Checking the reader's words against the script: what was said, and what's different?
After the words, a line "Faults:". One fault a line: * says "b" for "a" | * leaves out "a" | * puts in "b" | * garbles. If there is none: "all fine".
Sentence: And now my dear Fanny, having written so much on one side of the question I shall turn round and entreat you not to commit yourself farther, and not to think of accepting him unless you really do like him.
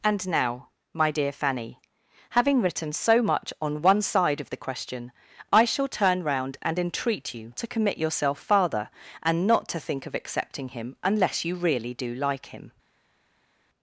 And now my dear Fanny, having written so much on one side of the question I shall turn round and entreat you to commit yourself farther, and not to think of accepting him unless you really do like him.
Faults:
* leaves out "not"